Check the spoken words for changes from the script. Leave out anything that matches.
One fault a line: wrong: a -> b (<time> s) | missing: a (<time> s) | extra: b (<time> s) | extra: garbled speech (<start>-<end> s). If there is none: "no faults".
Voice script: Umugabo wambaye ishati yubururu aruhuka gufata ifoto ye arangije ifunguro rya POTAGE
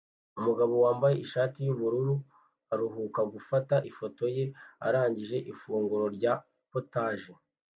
no faults